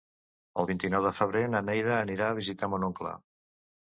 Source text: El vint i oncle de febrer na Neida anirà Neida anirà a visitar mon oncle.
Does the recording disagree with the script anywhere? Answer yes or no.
yes